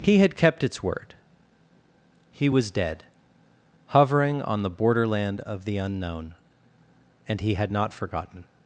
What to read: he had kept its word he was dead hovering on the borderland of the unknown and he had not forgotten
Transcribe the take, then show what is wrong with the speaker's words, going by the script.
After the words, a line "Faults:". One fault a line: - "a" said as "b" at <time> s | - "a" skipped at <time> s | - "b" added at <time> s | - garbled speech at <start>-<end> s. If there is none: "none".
he had kept its word he was dead hovering on the borderland of the unknown and he had not forgotten
Faults:
none